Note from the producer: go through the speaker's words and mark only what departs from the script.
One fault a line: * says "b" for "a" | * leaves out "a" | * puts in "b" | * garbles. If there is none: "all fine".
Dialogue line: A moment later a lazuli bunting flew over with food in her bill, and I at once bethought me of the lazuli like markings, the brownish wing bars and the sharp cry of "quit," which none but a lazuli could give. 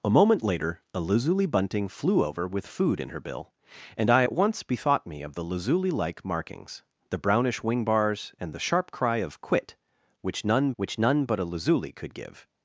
* puts in "which none"